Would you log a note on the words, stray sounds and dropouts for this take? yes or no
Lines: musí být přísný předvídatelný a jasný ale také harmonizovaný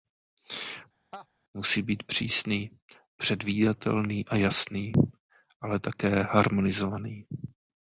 yes